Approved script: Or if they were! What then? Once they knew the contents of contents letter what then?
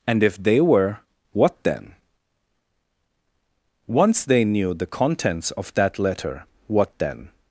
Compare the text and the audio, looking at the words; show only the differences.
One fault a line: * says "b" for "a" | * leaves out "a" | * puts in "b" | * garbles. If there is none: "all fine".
* says "And" for "Or"
* says "that" for "contents"